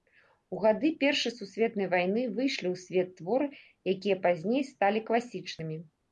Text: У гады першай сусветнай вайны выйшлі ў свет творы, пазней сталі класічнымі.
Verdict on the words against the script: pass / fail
fail